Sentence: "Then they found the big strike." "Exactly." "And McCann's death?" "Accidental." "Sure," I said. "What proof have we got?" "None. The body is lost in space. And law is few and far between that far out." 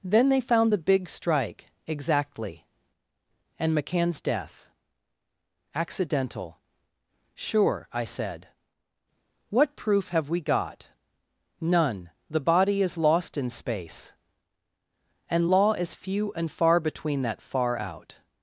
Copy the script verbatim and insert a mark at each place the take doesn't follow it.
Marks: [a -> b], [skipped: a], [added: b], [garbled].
"Then they found the big strike." "Exactly." "And McCann's death?" "Accidental." "Sure," I said. "What proof have we got?" "None. The body is lost in space. And law is few and far between that far out."